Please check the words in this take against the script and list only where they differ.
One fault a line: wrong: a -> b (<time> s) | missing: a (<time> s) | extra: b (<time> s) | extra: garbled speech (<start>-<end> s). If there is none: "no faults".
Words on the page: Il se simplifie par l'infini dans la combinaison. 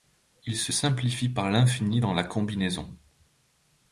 no faults